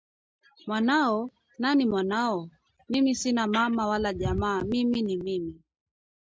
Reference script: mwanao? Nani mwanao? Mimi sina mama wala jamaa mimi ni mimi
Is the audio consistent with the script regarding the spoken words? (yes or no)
yes